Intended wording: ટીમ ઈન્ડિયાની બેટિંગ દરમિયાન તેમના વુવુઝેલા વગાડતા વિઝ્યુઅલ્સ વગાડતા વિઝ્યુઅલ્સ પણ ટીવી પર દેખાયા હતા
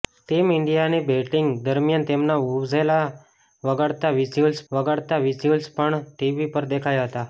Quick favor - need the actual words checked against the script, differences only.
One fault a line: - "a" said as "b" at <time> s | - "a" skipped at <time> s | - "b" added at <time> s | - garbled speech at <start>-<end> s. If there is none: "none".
none